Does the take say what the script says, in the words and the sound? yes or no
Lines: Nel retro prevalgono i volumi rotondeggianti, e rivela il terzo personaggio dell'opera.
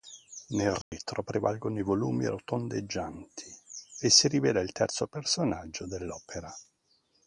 no